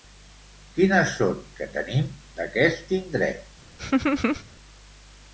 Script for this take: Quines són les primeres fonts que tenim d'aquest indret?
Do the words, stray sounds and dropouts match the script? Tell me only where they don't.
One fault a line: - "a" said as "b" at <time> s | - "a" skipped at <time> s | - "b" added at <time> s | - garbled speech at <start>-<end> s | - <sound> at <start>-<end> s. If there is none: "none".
- "les primeres fonts" skipped at 1.4 s
- laugh at 3.8-4.4 s